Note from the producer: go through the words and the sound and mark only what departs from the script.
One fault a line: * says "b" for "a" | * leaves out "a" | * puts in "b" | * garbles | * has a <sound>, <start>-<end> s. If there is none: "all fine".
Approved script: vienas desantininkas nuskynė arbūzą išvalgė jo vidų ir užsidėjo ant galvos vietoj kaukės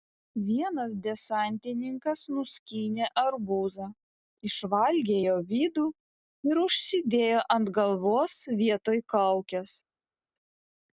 all fine